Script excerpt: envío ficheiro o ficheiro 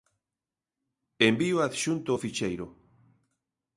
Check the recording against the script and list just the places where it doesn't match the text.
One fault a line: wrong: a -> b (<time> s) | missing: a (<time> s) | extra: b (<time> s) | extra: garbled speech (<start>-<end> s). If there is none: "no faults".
wrong: ficheiro -> adxunto (1.6 s)